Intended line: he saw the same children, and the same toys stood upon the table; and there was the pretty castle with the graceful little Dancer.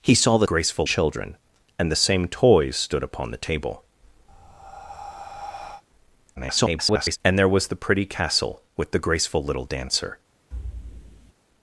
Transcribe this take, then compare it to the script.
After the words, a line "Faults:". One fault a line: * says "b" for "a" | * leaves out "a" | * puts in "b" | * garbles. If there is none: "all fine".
he saw the graceful children, and the same toys stood upon the table; [garbled] and there was the pretty castle with the graceful little Dancer.
Faults:
* says "graceful" for "same"
* garbles